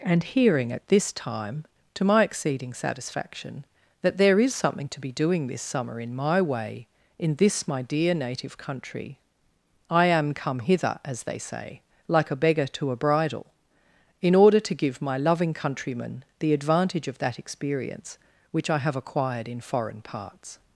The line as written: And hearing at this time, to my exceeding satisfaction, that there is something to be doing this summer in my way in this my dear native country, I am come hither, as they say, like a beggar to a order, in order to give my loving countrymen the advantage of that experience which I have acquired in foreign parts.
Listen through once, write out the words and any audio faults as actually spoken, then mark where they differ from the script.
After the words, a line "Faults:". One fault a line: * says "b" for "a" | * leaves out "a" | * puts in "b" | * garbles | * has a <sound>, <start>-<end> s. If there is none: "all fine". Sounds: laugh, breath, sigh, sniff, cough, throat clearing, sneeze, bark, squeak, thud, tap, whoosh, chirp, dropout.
And hearing at this time, to my exceeding satisfaction, that there is something to be doing this summer in my way in this my dear native country, I am come hither, as they say, like a beggar to a bridal, in order to give my loving countrymen the advantage of that experience which I have acquired in foreign parts.
Faults:
* says "bridal" for "order"